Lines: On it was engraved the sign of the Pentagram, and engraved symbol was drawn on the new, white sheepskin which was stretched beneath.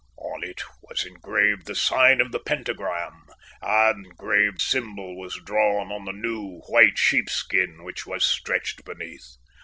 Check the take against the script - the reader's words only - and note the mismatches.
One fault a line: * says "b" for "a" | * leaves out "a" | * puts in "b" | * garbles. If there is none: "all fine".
all fine